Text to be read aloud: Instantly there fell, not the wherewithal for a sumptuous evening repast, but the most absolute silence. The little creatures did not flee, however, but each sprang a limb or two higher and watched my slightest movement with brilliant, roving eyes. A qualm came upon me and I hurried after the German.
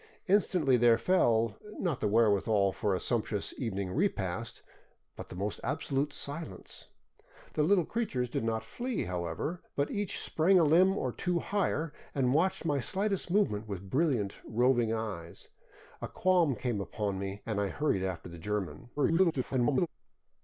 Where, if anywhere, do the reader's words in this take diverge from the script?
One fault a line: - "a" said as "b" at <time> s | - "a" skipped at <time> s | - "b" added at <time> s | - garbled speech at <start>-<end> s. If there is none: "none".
- garbled speech at 19.0-19.9 s